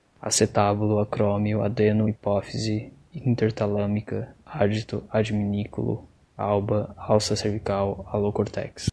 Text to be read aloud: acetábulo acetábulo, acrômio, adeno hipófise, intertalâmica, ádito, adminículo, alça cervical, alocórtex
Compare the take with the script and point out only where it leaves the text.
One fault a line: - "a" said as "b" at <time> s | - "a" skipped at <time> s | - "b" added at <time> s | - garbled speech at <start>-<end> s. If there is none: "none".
- "acetábulo" skipped at 1.0 s
- "alba" added at 6.4 s